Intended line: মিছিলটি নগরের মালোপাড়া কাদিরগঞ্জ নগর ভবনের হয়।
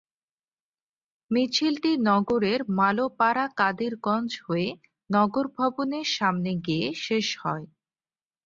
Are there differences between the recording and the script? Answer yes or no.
yes